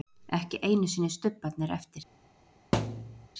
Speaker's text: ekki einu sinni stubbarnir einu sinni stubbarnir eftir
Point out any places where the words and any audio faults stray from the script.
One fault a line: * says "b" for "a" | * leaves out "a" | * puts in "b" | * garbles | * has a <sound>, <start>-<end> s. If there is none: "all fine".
* leaves out "einu sinni stubbarnir"
* has a thud, 2.7-3.3 s